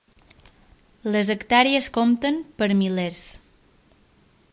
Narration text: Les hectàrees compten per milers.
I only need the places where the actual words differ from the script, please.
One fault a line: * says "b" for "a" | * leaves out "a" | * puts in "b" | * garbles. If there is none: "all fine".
all fine